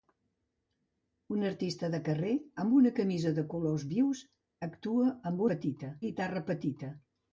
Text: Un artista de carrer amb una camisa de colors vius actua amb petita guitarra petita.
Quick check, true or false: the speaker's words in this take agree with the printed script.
true